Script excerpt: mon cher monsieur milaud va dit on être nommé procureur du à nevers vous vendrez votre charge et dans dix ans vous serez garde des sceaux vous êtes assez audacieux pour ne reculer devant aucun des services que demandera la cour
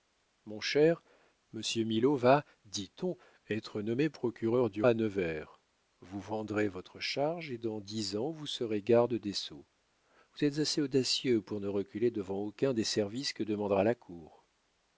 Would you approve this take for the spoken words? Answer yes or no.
yes